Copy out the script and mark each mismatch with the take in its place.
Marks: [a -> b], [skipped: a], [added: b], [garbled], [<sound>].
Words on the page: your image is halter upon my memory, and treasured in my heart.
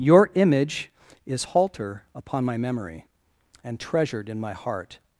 your image is halter upon my memory, and treasured in my heart.